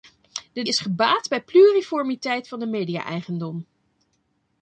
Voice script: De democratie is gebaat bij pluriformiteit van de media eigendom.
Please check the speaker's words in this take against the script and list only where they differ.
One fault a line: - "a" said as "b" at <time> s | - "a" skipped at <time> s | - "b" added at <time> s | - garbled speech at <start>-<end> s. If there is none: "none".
- "democratie" skipped at 0.6 s